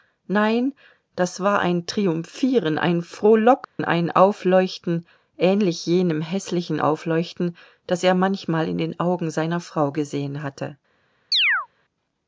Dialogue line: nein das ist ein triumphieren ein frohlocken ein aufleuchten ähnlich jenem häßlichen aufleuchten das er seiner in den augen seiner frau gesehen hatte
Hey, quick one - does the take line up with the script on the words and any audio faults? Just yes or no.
no